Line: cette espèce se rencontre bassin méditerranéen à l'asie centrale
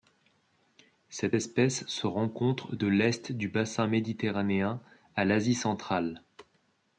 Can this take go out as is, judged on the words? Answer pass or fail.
fail